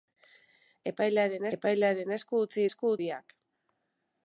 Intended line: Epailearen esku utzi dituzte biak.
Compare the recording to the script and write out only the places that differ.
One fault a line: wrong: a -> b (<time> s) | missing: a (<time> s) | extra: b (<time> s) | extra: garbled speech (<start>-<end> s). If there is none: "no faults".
extra: epailearen (1.6 s)
wrong: dituzte -> esku (2.7 s)